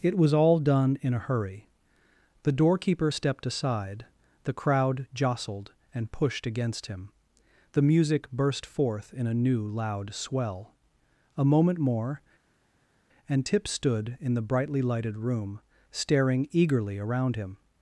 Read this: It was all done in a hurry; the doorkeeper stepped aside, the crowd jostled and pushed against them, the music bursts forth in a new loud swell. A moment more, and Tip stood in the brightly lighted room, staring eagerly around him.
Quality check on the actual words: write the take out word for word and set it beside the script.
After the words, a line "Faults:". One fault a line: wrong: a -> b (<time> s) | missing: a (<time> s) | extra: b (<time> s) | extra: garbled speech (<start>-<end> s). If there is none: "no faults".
It was all done in a hurry; the doorkeeper stepped aside, the crowd jostled and pushed against him, the music burst forth in a new loud swell. A moment more, and Tip stood in the brightly lighted room, staring eagerly around him.
Faults:
wrong: them -> him (6.9 s)
wrong: bursts -> burst (8.3 s)